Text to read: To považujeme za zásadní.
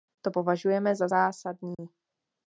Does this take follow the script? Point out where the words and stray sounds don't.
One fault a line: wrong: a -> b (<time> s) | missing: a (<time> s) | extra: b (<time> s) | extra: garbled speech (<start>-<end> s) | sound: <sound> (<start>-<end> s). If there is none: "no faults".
sound: dropout (1.7-1.8 s)